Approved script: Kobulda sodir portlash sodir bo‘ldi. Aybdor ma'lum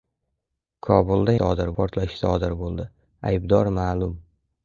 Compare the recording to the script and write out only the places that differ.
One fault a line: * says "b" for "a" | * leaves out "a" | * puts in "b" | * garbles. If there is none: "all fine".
all fine